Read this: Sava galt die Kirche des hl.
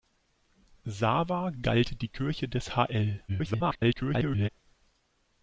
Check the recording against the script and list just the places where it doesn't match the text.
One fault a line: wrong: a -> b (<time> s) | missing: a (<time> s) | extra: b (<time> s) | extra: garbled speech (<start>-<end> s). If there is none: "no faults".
extra: garbled speech (3.3-4.5 s)